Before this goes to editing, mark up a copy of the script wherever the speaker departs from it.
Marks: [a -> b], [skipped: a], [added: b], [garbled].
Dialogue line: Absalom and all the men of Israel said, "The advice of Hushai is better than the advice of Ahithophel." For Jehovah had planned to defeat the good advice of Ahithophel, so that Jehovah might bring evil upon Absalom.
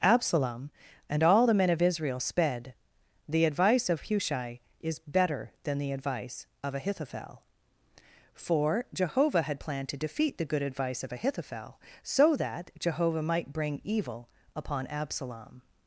Absalom and all the men of Israel [said, -> sped] "The advice of Hushai is better than the advice of Ahithophel." For Jehovah had planned to defeat the good advice of Ahithophel, so that Jehovah might bring evil upon Absalom.